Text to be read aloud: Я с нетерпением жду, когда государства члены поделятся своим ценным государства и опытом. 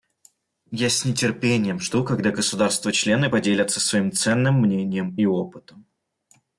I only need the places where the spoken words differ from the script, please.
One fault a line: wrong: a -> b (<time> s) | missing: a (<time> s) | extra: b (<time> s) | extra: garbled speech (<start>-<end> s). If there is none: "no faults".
wrong: государства -> мнением (4.6 s)